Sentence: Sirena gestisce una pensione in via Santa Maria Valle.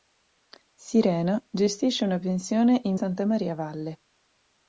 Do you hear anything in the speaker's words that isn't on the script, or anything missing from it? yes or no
yes